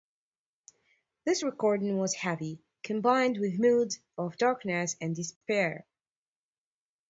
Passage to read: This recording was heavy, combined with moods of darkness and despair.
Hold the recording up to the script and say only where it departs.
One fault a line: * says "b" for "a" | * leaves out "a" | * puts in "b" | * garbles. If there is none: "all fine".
all fine